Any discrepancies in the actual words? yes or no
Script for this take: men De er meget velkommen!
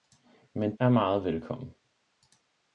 yes